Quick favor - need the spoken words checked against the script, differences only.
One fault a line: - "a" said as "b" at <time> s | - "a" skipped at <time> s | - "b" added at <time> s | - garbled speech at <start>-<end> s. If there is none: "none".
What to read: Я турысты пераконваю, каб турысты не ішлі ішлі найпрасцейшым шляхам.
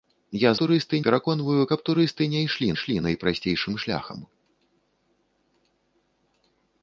none